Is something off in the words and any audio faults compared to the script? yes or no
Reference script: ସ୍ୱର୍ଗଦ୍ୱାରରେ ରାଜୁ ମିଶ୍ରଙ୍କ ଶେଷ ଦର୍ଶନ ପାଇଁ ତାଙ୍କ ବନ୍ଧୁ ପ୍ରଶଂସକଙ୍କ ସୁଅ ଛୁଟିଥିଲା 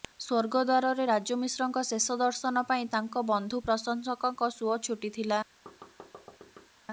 yes